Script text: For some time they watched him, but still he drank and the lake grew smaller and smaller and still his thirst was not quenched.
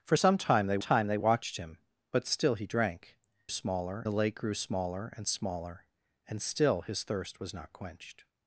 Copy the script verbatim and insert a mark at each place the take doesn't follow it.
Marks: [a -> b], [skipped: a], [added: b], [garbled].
For some time they [added: time they] watched him, but still he drank [and -> smaller] the lake grew smaller and smaller and still his thirst was not quenched.